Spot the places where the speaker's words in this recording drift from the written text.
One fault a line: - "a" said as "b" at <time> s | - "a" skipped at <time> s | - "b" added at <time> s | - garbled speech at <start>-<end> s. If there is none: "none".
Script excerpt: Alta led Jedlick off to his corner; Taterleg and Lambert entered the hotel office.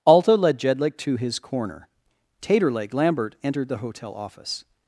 - "off" skipped at 1.0 s
- "and" skipped at 2.9 s